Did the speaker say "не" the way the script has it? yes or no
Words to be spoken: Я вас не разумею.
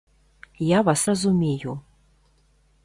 no